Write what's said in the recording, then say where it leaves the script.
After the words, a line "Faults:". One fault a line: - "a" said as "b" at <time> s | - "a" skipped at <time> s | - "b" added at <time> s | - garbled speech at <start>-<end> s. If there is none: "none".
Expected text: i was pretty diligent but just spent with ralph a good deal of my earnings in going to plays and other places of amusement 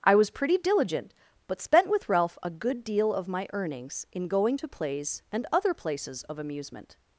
i was pretty diligent but spent with ralph a good deal of my earnings in going to plays and other places of amusement
Faults:
- "just" skipped at 1.6 s